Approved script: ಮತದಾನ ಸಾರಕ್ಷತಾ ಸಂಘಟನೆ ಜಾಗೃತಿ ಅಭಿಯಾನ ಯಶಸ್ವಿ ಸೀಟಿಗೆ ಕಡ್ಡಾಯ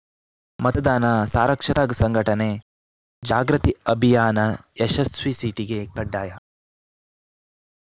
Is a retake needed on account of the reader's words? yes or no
no